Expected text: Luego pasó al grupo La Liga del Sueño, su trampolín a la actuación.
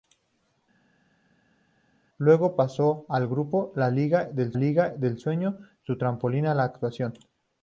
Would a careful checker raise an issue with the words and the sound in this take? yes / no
yes